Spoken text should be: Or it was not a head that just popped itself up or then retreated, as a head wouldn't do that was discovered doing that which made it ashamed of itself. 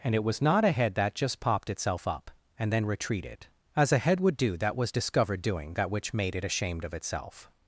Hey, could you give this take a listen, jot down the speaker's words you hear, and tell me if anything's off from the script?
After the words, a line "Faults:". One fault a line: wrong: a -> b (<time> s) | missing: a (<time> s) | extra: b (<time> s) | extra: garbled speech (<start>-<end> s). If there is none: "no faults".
And it was not a head that just popped itself up and then retreated, as a head would do that was discovered doing that which made it ashamed of itself.
Faults:
wrong: Or -> And (0.0 s)
wrong: or -> and (2.6 s)
wrong: wouldn't -> would (4.2 s)